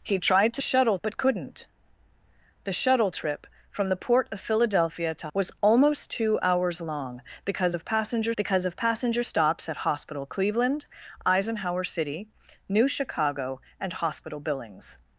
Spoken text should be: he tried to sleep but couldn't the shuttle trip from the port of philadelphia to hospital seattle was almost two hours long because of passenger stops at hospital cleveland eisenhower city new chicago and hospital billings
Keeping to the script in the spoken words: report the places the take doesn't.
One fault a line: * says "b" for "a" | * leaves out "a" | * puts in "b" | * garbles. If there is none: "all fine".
* says "shuttle" for "sleep"
* leaves out "hospital seattle"
* puts in "because of passenger"